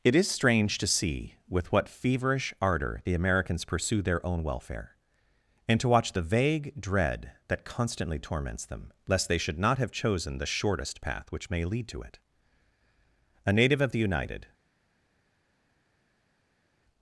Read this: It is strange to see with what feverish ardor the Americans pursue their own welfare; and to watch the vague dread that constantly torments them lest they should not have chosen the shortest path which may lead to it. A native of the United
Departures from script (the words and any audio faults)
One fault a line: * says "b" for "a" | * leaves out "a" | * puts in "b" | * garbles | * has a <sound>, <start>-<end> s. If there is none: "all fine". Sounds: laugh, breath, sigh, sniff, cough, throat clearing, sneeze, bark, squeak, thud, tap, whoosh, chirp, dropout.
all fine